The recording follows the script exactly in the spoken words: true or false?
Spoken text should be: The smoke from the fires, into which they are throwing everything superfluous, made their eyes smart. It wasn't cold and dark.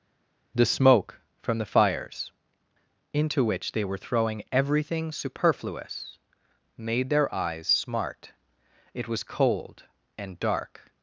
false